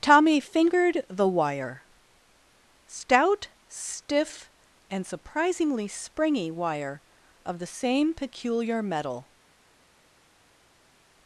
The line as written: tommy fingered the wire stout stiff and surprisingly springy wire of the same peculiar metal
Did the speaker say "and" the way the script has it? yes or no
yes